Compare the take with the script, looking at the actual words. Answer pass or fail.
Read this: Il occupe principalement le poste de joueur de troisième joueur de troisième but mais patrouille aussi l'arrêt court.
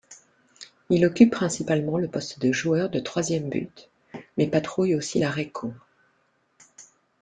fail